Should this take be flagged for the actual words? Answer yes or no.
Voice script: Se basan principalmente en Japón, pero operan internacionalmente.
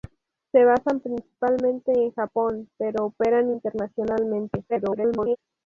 yes